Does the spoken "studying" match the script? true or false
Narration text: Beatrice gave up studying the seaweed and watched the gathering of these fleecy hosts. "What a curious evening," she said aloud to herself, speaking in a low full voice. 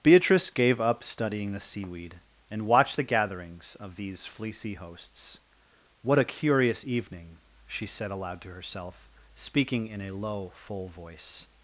true